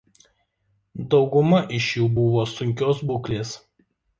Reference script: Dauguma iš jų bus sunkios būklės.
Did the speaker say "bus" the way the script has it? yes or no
no